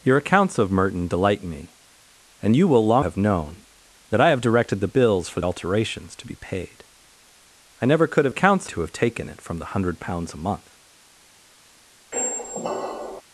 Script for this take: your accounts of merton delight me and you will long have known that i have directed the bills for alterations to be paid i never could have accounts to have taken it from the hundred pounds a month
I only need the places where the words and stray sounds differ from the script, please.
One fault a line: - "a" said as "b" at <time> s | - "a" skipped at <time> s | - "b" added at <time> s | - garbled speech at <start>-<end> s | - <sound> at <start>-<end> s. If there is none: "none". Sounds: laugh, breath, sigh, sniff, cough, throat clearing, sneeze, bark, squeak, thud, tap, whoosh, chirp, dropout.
- squeak at 12.1-13.2 s